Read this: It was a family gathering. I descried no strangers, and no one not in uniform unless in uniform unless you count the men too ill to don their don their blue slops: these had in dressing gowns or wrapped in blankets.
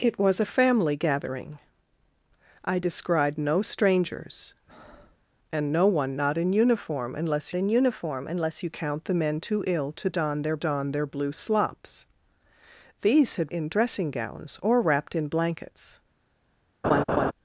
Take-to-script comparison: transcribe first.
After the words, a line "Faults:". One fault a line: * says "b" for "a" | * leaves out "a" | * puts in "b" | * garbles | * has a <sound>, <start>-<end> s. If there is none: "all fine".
It was a family gathering. I descried no strangers, and no one not in uniform unless in uniform unless you count the men too ill to don their don their blue slops: these had in dressing gowns or wrapped in blankets.
Faults:
* has a breath, 4.7-5.2 s
* has a laugh, 16.8-17.3 s